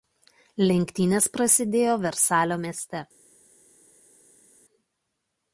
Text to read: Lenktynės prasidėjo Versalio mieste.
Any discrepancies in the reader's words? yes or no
no